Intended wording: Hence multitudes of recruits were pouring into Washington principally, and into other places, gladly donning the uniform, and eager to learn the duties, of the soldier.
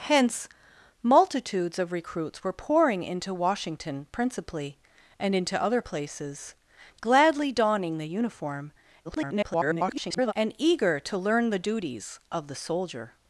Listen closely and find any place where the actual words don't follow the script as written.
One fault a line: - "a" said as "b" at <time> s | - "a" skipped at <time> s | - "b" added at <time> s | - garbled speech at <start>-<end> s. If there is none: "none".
- garbled speech at 9.0-10.3 s